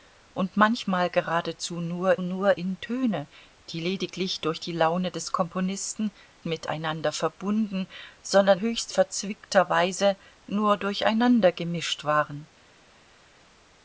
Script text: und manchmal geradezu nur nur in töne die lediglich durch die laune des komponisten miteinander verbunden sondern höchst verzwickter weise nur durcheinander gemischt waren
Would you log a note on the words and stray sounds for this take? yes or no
no